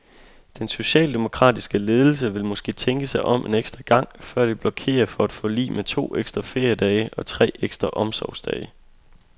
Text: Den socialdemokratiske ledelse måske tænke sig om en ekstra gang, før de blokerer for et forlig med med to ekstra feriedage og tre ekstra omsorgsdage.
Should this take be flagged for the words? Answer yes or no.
yes